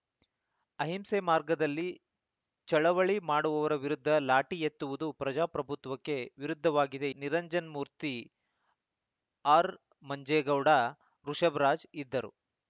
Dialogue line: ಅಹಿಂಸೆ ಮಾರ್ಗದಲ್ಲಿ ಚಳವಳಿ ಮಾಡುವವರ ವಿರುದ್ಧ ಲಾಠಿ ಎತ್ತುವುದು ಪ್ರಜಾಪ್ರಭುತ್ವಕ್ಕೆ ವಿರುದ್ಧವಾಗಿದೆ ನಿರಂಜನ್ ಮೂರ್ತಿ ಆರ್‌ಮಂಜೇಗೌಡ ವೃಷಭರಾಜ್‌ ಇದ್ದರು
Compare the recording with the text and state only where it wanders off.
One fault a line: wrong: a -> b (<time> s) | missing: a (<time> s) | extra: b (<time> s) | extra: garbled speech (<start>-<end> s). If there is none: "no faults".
no faults